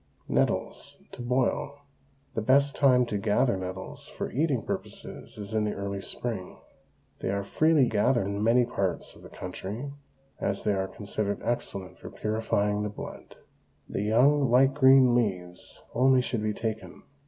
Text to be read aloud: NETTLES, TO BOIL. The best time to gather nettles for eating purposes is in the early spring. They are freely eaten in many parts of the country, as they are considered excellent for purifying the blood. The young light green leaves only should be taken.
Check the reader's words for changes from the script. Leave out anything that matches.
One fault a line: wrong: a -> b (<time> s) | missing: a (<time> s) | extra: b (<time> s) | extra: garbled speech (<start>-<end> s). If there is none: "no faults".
wrong: eaten -> gather (7.9 s)